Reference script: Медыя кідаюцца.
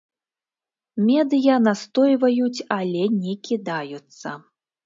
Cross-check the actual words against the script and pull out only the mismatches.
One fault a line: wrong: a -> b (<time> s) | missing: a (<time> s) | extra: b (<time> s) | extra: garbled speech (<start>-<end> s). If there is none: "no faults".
extra: настойваюць але не (1.7 s)